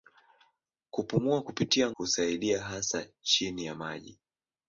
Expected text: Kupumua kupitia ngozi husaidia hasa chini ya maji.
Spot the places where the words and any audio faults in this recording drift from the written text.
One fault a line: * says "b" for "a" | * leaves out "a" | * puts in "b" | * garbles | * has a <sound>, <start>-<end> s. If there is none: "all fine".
* leaves out "ngozi"